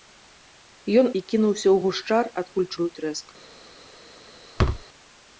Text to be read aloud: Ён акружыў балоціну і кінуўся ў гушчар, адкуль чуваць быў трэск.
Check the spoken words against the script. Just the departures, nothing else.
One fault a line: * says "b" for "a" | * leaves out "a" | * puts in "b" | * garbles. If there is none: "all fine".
* leaves out "акружыў балоціну"
* leaves out "чуваць"